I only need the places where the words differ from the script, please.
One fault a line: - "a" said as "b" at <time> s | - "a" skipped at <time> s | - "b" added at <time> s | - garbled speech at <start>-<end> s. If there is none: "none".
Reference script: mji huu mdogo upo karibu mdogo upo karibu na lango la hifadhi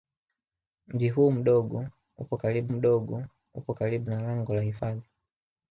none